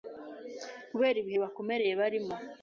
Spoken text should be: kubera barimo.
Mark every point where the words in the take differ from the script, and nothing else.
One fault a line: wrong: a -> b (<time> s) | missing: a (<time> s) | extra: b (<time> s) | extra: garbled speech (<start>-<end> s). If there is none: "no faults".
extra: ibihe bibakomereye (1.2 s)